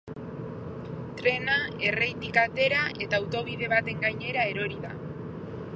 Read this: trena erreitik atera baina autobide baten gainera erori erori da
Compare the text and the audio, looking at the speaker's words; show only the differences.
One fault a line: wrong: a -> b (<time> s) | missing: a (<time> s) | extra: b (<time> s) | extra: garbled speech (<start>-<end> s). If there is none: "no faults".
wrong: baina -> eta (3.1 s)
missing: erori (4.8 s)